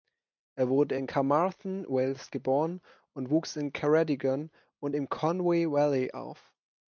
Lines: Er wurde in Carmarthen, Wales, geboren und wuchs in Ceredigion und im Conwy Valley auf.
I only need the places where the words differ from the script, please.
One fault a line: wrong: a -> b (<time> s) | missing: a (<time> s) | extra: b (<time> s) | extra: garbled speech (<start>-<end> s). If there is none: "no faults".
no faults